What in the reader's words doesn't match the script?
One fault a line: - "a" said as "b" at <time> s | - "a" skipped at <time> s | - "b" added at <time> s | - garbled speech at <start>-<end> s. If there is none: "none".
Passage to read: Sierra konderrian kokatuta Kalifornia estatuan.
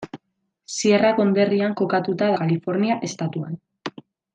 none